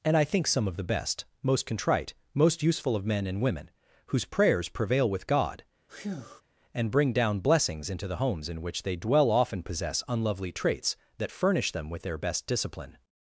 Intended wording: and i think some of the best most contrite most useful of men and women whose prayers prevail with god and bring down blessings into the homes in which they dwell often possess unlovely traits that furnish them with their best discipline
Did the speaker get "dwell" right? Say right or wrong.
right